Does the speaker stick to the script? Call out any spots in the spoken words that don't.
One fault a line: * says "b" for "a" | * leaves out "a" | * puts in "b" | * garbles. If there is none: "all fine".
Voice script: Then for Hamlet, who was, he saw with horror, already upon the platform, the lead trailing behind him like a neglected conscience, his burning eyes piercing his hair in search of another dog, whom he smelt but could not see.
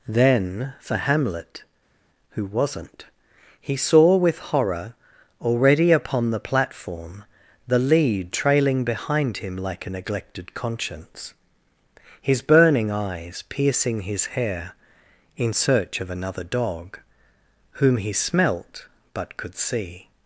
* says "wasn't" for "was"
* leaves out "not"